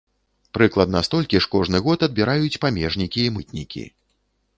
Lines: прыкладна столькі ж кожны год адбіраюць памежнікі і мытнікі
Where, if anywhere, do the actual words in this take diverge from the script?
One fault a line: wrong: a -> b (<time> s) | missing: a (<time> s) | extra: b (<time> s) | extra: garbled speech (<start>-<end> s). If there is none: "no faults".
no faults